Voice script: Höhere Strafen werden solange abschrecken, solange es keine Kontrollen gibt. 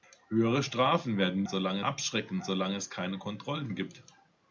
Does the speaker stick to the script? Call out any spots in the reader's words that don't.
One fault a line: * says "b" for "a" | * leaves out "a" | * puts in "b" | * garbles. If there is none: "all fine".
all fine